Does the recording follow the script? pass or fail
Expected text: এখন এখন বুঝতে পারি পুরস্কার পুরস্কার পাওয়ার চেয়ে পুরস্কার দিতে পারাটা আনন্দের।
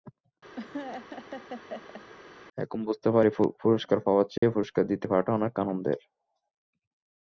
fail